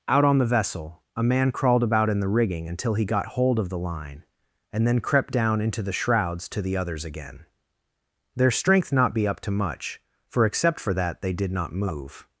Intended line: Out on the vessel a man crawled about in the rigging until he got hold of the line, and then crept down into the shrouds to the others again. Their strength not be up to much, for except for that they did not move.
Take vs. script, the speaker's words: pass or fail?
pass